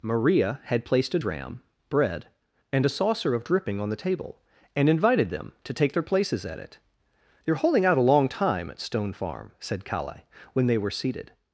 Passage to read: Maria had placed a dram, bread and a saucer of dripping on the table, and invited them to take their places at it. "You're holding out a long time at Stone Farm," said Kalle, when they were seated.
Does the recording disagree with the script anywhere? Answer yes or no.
no